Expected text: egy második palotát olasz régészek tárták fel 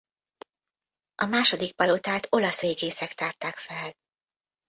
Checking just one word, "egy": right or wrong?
wrong